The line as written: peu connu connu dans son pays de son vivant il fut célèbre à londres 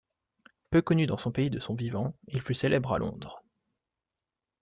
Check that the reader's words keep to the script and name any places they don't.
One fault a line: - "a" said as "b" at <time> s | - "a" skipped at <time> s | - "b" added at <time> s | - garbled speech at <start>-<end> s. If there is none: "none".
- "connu" skipped at 1.1 s